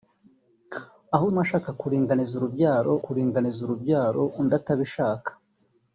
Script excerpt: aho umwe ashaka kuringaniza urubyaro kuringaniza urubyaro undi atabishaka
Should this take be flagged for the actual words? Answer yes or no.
no